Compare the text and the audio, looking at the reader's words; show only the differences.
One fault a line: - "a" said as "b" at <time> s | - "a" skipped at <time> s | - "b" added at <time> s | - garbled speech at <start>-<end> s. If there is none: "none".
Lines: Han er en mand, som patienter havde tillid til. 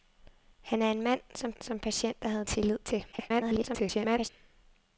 - "som" added at 1.6 s
- garbled speech at 3.1-4.3 s